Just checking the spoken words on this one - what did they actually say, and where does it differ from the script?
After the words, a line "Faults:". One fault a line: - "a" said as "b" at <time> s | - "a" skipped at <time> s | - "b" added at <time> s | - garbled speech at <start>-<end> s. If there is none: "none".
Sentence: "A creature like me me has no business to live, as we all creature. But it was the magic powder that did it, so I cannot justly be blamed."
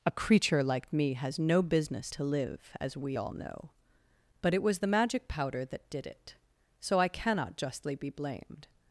"A creature like me has no business to live, as we all know. But it was the magic powder that did it, so I cannot justly be blamed."
Faults:
- "me" skipped at 1.1 s
- "creature" said as "know" at 3.3 s